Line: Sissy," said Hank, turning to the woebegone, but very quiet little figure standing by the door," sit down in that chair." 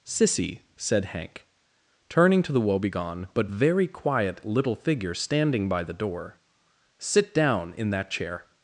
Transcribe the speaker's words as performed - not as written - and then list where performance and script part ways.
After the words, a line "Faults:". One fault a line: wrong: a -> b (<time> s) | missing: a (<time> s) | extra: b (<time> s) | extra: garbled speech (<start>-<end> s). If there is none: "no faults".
Sissy," said Hank, turning to the woebegone, but very quiet little figure standing by the door," sit down in that chair."
Faults:
no faults